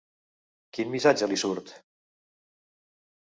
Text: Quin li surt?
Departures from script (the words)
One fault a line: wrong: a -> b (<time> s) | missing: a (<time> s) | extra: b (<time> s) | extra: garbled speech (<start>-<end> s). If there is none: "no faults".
extra: missatge (0.9 s)